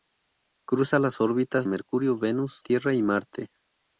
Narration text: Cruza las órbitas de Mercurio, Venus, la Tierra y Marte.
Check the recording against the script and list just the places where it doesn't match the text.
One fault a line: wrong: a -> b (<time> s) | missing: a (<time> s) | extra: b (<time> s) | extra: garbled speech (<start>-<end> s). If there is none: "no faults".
missing: de (1.7 s)
missing: la (2.6 s)